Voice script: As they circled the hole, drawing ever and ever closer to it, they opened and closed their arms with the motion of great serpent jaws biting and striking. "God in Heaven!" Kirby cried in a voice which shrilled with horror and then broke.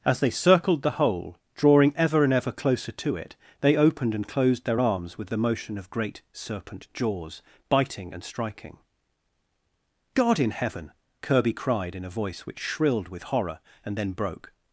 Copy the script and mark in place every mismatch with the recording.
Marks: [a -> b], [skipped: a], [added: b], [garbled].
As they circled the hole, drawing ever and ever closer to it, they opened and closed their arms with the motion of great serpent jaws biting and striking. "God in Heaven!" Kirby cried in a voice which shrilled with horror and then broke.